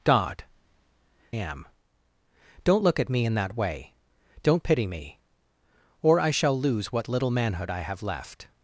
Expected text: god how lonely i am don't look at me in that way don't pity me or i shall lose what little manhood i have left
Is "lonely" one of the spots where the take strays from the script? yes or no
yes